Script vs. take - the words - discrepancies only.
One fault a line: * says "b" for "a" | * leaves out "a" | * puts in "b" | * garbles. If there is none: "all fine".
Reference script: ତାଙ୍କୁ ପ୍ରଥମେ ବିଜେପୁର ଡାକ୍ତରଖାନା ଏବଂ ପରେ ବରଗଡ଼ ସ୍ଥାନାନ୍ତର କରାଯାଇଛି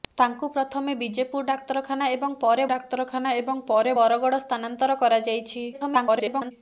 * puts in "ଡାକ୍ତରଖାନା ଏବଂ ପରେ"
* garbles